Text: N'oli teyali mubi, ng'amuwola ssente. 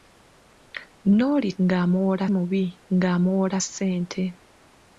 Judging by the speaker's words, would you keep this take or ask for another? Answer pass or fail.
fail